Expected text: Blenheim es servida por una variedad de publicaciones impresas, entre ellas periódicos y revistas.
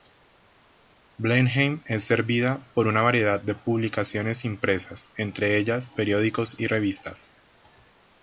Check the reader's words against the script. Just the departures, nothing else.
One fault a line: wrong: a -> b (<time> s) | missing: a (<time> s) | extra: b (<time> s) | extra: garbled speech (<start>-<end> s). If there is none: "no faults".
no faults